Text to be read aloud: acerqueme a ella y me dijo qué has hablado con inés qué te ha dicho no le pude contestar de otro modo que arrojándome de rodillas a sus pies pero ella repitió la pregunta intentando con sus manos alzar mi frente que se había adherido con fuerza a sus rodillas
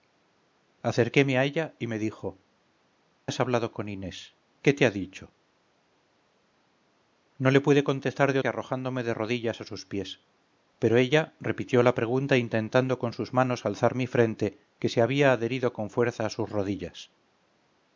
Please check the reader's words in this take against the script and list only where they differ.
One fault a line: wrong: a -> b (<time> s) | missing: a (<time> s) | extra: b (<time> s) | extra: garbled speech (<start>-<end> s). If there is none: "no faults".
missing: qué (2.4 s)
missing: otro modo (8.4 s)